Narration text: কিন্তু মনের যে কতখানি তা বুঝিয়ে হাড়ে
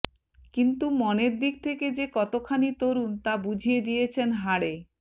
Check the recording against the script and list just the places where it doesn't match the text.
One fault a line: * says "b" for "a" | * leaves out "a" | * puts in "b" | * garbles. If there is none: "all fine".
* puts in "দিক থেকে"
* puts in "তরুণ"
* puts in "দিয়েছেন"